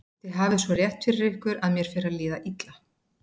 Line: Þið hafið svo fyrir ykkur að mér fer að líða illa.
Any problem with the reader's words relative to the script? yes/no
yes